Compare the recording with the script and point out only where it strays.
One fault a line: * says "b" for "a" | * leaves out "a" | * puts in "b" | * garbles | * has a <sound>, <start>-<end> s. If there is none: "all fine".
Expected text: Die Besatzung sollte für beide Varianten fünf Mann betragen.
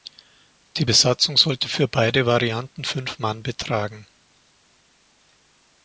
all fine